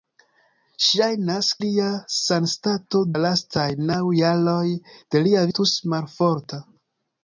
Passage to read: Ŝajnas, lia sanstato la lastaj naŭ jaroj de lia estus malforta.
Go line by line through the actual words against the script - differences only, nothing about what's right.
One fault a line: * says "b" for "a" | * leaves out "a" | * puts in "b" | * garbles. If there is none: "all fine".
all fine